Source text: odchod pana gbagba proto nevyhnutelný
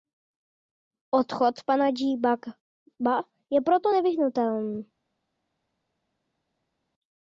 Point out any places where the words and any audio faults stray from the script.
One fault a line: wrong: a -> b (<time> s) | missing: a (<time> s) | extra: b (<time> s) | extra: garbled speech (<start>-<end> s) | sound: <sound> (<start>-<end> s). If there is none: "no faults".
extra: je (3.5 s)